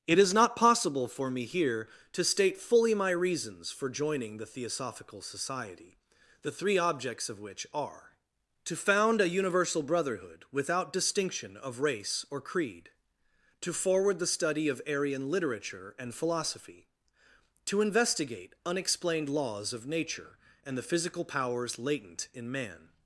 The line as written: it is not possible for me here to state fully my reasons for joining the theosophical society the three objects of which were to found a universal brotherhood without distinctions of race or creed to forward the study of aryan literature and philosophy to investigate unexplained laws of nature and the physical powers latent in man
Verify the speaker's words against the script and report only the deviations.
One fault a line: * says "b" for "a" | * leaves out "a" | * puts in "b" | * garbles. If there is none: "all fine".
* says "are" for "were"
* says "distinction" for "distinctions"